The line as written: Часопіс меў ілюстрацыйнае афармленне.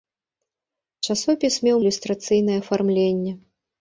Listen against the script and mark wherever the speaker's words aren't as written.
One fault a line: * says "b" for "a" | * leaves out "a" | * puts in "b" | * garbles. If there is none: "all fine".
all fine